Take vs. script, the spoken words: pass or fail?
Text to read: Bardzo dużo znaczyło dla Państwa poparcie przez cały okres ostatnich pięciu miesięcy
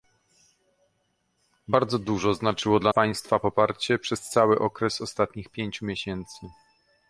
pass